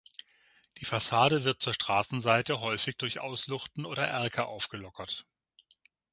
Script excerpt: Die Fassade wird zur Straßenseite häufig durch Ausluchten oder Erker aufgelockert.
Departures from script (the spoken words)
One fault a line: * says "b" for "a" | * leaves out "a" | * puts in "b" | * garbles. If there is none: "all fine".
all fine